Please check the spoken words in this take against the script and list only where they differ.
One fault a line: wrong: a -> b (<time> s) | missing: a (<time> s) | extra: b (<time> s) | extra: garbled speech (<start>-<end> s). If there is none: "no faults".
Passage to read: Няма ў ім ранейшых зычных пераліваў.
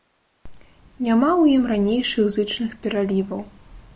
no faults